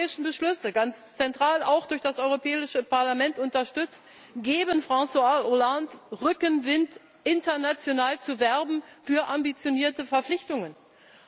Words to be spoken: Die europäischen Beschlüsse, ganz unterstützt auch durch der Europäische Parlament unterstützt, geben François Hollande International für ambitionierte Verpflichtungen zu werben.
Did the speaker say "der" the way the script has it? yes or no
no